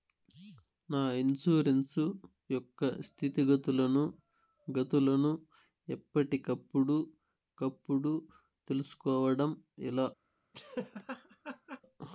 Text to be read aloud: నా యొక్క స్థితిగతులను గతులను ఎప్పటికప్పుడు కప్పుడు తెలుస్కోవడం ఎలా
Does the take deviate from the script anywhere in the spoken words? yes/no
yes